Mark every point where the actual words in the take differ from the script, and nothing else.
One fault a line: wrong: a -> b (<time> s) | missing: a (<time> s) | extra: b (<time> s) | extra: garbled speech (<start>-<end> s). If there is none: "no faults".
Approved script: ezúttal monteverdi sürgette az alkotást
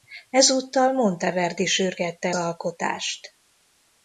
missing: az (2.4 s)